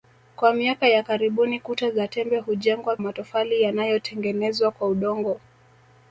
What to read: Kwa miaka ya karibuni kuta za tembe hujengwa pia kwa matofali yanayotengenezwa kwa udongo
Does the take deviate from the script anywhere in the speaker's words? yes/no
yes